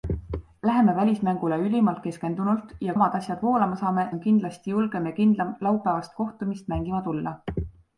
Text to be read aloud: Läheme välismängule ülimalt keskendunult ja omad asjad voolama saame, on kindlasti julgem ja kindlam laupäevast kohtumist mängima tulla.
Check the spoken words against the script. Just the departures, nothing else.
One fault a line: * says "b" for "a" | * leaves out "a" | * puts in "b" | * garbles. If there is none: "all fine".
all fine